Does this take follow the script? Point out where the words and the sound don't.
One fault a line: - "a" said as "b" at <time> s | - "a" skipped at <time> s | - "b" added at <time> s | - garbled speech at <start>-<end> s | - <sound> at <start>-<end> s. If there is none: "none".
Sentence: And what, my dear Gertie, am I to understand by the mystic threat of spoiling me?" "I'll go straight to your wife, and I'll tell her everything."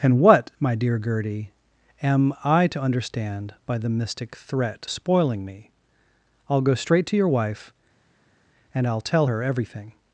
- "of" skipped at 4.9 s